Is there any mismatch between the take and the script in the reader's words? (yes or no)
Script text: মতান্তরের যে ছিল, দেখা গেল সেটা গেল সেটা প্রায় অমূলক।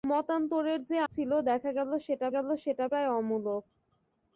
no